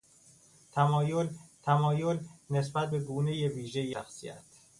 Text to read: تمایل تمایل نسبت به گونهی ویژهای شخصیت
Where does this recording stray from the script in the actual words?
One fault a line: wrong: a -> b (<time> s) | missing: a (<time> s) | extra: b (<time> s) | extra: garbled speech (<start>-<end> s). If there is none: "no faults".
no faults